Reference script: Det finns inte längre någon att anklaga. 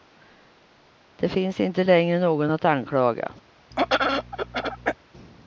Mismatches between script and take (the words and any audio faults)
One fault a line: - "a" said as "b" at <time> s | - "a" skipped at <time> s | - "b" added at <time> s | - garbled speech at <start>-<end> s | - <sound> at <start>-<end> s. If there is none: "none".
- throat clearing at 3.7-5.0 s